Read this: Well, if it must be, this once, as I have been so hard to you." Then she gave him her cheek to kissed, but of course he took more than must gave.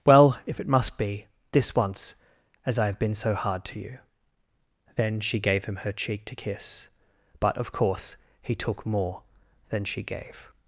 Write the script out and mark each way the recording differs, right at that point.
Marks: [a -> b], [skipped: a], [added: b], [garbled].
Well, if it must be, this once, as I have been so hard to you." Then she gave him her cheek to [kissed, -> kiss] but of course he took more than [must -> she] gave.